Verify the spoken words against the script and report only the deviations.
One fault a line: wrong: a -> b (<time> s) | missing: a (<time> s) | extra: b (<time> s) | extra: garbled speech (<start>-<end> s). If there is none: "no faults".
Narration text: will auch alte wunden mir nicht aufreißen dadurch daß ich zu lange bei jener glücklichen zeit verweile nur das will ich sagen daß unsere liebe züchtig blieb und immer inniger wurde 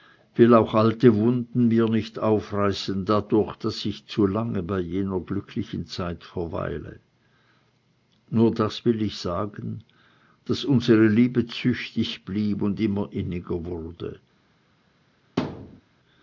no faults